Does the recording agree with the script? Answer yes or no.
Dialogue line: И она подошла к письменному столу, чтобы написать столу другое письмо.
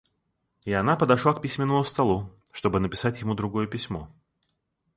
no